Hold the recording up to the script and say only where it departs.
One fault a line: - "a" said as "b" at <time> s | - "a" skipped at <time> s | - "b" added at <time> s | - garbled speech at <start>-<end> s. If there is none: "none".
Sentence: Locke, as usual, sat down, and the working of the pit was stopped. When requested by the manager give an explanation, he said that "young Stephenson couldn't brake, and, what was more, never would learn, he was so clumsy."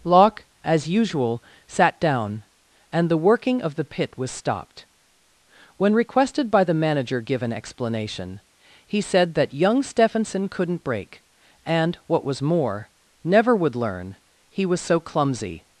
none